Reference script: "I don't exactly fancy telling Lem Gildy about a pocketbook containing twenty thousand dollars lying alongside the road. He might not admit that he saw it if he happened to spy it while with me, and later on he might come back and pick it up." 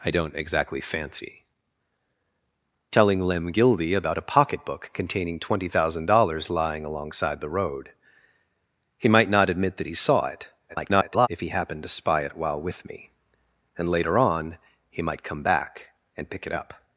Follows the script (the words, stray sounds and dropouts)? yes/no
no